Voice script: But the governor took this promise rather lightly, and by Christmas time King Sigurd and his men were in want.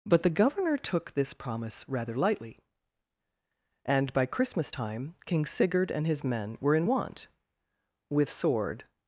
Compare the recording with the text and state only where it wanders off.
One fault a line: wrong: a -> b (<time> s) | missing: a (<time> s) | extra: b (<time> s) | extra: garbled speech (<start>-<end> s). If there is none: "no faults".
extra: With sword (8.1 s)